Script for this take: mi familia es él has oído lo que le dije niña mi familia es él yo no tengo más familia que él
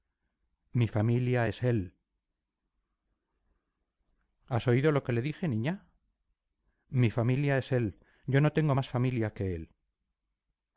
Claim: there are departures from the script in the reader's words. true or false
false